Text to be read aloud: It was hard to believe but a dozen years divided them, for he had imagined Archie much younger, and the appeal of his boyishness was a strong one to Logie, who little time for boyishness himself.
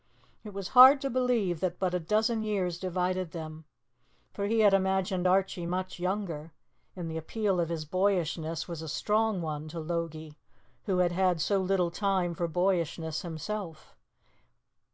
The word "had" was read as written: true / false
true